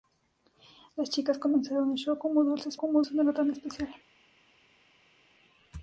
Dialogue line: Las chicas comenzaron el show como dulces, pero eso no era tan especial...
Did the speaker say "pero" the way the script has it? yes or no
no